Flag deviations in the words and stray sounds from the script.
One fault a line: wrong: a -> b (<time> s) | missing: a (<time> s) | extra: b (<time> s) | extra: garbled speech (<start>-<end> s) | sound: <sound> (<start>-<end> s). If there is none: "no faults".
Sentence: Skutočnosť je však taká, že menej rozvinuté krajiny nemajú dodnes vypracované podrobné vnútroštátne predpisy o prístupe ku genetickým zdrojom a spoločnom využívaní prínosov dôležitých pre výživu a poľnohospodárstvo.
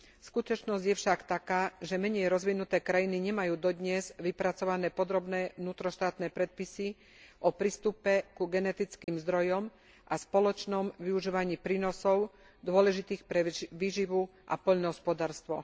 sound: dropout (9.0-9.1 s)